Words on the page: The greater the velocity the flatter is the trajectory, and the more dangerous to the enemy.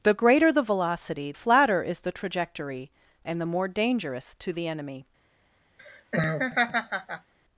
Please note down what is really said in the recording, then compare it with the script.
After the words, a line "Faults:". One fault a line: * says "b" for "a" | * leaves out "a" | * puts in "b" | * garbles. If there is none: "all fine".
The greater the velocity flatter is the trajectory, and the more dangerous to the enemy.
Faults:
* leaves out "the"